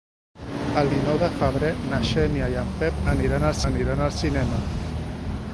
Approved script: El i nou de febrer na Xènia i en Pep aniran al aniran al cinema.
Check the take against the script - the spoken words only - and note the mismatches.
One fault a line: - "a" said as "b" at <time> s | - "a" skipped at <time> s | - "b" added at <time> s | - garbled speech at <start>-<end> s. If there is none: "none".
none